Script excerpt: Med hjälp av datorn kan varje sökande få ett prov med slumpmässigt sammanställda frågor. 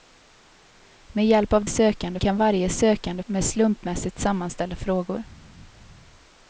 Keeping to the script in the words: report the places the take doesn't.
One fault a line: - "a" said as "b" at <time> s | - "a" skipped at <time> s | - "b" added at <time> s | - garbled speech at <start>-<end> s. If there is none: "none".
- "datorn" said as "sökande" at 1.6 s
- "få ett prov" skipped at 3.2 s